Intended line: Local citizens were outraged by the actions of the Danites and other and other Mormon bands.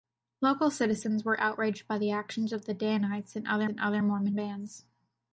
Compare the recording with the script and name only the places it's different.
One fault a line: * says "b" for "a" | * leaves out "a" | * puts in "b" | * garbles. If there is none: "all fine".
all fine